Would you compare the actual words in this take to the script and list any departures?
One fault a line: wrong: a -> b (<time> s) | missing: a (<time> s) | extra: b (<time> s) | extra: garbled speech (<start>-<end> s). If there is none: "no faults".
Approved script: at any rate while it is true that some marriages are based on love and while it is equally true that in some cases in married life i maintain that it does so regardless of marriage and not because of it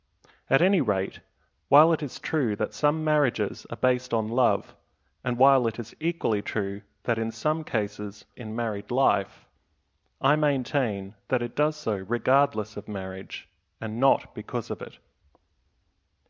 no faults